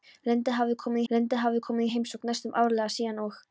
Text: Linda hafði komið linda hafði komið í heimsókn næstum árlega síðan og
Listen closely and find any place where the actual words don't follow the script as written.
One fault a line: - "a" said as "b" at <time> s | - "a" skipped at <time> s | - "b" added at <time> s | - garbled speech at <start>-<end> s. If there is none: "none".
none